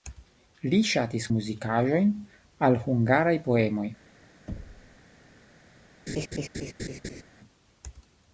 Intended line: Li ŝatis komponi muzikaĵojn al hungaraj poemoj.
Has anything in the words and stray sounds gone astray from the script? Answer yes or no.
yes